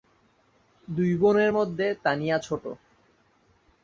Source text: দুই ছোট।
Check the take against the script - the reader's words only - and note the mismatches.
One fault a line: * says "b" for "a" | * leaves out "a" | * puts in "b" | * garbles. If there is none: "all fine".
* puts in "বোনের মধ্যে তানিয়া"